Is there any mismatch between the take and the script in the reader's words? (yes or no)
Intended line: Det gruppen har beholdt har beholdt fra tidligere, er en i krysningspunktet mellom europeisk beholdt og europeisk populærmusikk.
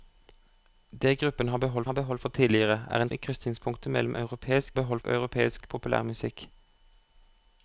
no